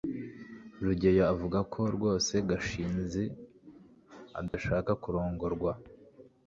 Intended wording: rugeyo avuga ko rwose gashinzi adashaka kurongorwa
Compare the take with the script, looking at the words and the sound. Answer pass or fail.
fail